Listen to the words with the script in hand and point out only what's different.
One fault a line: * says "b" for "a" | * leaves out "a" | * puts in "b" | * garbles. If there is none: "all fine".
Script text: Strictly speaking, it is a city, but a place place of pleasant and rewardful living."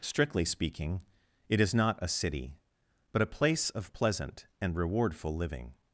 * puts in "not"
* leaves out "place"